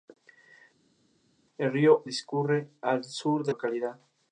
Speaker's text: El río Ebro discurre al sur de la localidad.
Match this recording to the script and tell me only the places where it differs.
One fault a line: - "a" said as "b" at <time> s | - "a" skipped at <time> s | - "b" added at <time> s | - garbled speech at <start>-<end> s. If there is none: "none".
- "Ebro" skipped at 2.0 s
- "la" skipped at 3.5 s